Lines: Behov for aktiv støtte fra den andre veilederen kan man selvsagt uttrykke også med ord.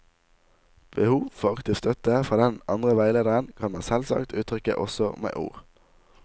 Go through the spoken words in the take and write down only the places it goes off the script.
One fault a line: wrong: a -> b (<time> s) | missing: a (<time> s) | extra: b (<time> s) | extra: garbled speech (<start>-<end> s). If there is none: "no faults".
no faults